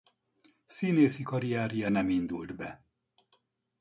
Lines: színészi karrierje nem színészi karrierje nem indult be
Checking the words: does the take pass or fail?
fail